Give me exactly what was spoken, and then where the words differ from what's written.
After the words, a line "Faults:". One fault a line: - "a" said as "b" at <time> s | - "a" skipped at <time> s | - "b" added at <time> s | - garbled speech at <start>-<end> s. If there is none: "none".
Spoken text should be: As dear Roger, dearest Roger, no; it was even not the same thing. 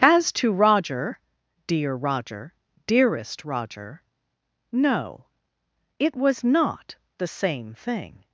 As to Roger, dear Roger, dearest Roger, no; it was not the same thing.
Faults:
- "to Roger" added at 0.3 s
- "even" skipped at 6.4 s